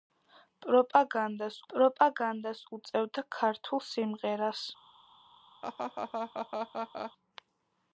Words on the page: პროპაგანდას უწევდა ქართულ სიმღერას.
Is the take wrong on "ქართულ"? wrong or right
right